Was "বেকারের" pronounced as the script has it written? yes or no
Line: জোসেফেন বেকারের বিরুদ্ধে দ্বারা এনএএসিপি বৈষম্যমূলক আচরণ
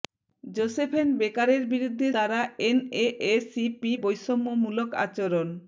yes